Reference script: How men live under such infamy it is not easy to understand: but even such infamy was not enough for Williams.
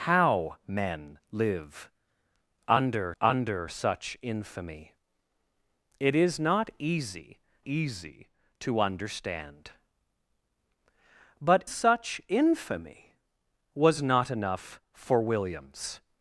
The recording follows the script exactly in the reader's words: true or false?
false